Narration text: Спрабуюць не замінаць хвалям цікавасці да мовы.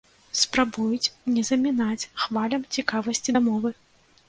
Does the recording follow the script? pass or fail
pass